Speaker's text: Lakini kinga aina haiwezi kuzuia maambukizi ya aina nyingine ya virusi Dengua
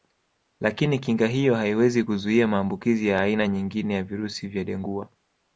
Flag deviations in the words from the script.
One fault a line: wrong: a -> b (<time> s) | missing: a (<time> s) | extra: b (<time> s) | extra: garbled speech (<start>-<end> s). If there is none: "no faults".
wrong: aina -> hiyo (1.3 s)
extra: vya (4.5 s)